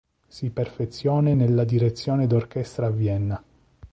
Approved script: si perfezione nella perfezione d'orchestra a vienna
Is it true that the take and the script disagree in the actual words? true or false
true